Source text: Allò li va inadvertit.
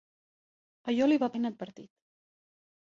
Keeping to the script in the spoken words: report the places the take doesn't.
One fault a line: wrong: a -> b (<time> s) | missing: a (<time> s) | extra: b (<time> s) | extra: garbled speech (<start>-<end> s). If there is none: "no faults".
no faults